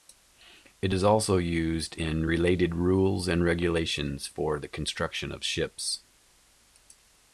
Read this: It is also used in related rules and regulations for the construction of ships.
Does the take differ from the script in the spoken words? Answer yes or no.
no